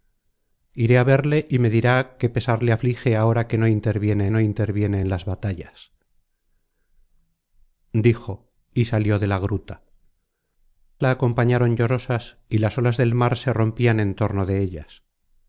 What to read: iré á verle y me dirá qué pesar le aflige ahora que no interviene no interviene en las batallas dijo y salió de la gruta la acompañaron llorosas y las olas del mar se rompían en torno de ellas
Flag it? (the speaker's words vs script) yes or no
no